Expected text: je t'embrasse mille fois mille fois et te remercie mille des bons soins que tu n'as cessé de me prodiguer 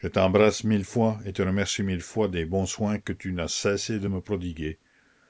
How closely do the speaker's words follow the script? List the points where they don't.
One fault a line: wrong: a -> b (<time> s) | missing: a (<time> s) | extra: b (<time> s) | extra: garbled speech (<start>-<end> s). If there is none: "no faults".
missing: mille fois (1.2 s)
extra: fois (2.0 s)